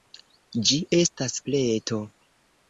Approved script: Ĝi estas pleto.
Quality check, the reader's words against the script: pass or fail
pass